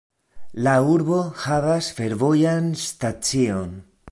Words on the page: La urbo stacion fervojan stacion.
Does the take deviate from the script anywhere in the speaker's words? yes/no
yes